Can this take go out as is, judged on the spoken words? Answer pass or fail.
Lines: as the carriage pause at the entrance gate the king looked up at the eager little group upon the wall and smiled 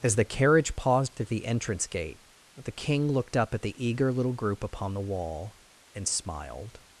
fail